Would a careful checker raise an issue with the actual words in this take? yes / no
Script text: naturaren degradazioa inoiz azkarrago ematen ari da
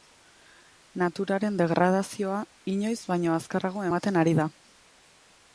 yes